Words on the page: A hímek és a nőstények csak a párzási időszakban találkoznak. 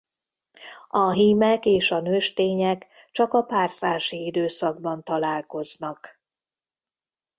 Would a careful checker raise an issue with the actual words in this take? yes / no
no